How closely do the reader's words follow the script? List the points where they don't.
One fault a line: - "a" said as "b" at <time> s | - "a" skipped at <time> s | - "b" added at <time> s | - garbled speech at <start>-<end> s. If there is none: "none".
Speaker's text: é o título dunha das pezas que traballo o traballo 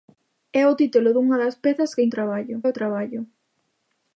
none